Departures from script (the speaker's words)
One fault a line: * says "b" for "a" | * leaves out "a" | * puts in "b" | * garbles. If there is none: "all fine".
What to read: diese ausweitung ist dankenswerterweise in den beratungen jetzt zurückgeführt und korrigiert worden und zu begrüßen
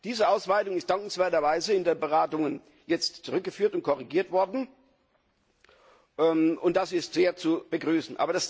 * puts in "das ist sehr"